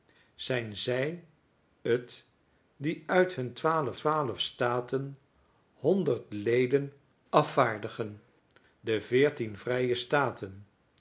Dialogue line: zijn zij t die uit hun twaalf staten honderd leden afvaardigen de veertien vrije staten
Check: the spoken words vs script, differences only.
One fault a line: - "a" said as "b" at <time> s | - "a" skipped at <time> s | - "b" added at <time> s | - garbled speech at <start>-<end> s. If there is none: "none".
- "twaalf" added at 3.9 s